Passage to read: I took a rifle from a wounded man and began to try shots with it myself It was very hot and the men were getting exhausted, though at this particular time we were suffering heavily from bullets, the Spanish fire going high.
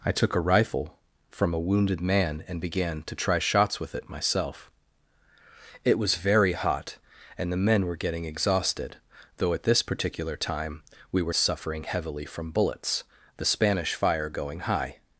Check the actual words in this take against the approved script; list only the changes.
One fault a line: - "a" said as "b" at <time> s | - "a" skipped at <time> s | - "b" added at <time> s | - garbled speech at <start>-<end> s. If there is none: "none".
none